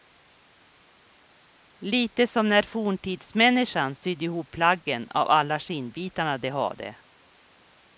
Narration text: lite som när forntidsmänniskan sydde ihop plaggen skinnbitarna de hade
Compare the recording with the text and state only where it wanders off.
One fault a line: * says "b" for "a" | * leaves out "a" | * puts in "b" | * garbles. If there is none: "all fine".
* puts in "av alla"